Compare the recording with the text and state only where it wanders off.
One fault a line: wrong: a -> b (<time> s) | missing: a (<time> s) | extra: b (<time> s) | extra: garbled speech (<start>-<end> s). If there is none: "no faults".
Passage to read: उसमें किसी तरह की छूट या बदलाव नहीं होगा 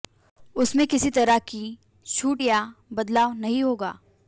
no faults